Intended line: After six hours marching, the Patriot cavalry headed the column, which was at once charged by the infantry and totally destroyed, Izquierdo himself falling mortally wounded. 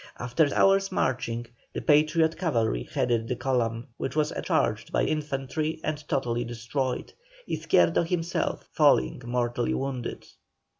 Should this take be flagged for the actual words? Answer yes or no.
yes